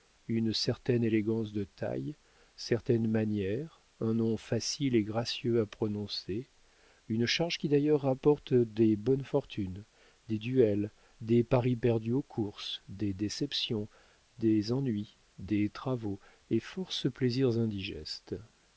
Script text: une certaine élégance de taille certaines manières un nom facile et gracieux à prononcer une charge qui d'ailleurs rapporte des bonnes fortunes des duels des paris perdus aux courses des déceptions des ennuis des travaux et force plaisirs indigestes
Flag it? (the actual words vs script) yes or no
no